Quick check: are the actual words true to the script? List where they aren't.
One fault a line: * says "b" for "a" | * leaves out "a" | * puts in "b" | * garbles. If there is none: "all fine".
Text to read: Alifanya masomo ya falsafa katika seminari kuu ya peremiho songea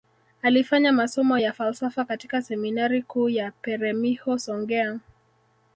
all fine